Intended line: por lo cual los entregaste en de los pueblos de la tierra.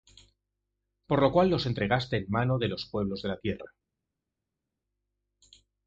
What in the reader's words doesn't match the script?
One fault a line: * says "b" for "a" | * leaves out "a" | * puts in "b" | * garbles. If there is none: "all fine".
* puts in "mano"